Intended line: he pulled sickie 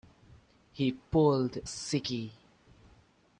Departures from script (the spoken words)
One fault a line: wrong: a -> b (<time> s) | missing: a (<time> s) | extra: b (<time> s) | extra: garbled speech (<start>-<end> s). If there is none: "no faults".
no faults